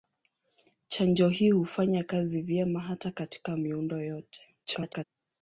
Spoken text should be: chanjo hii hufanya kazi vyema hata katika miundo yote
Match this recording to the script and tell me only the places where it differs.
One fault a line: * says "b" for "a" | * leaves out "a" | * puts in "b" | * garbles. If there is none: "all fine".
* garbles